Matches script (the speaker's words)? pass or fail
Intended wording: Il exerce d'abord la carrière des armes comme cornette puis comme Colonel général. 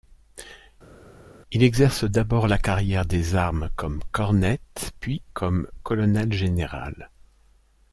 pass